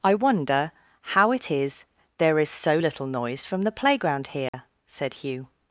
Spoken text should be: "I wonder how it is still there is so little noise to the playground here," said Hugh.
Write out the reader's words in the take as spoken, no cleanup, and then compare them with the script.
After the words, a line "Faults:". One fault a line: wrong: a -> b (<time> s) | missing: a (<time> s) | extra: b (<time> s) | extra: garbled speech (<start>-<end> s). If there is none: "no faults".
"I wonder how it is there is so little noise from the playground here," said Hugh.
Faults:
missing: still (1.8 s)
wrong: to -> from (3.5 s)